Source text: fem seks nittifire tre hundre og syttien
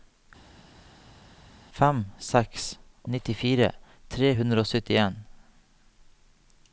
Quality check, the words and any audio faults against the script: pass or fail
pass